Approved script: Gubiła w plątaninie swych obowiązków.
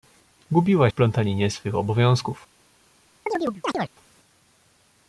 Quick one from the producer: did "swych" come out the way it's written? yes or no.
yes